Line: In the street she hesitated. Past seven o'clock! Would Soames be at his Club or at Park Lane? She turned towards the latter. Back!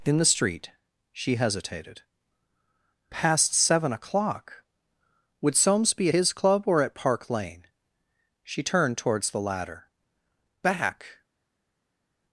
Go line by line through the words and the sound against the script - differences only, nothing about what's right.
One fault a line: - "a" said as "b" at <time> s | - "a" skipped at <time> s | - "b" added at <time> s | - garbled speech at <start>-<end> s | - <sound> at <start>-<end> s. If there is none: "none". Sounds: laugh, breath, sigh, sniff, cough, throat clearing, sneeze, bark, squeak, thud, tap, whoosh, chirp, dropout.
- "at" skipped at 6.1 s